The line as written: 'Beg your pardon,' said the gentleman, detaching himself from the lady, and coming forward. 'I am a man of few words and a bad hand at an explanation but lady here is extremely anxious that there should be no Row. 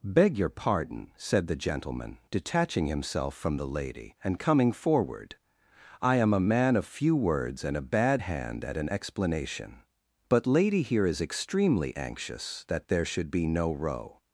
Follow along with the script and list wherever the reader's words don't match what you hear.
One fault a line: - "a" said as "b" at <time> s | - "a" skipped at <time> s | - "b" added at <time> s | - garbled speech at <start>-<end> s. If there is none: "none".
none